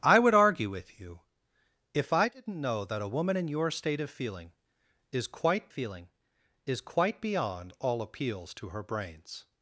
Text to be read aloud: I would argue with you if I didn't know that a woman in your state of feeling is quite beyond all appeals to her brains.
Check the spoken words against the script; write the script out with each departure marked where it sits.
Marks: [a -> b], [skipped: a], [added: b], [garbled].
I would argue with you if I didn't know that a woman in your state of feeling is quite [added: feeling is quite] beyond all appeals to her brains.